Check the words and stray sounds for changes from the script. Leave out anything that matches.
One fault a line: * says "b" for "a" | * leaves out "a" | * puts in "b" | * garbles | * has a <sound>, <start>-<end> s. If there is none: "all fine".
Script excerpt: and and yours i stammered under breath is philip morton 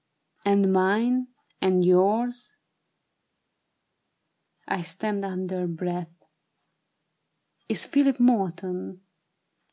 * puts in "mine"